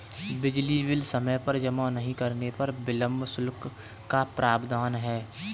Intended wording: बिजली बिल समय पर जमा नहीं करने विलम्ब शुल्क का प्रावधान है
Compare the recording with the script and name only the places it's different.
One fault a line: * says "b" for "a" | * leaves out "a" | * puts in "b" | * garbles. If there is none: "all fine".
* puts in "पर"